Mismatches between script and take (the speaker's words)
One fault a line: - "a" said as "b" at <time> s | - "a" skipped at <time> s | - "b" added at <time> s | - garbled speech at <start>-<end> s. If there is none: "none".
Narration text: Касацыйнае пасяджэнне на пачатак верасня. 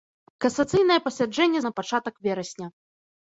none